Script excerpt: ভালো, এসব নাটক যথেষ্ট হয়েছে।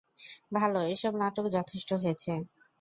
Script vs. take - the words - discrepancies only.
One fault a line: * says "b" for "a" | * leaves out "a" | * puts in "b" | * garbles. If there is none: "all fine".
all fine